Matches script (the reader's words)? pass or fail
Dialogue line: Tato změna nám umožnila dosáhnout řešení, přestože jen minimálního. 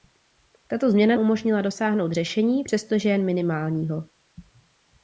fail